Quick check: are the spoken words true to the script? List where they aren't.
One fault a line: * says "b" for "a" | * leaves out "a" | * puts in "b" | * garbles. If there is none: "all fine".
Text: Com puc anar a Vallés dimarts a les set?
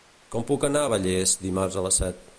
all fine